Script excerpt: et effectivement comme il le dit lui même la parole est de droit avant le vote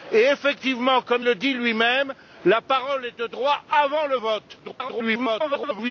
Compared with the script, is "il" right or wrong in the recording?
wrong